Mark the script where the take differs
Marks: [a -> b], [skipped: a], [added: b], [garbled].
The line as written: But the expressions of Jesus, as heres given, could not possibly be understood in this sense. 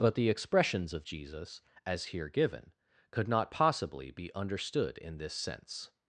But the expressions of Jesus, as [heres -> here] given, could not possibly be understood in this sense.